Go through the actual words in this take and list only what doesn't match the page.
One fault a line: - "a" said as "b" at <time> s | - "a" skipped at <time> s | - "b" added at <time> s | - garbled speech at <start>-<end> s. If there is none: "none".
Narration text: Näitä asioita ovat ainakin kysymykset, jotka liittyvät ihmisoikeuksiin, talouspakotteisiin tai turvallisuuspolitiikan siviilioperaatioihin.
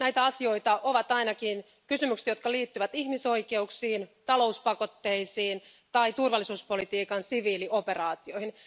none